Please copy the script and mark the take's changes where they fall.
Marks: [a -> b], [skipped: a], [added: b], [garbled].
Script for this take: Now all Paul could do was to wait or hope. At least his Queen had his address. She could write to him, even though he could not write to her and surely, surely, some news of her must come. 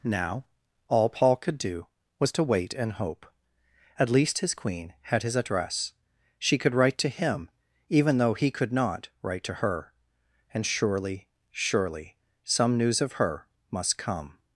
Now all Paul could do was to wait [or -> and] hope. At least his Queen had his address. She could write to him, even though he could not write to her and surely, surely, some news of her must come.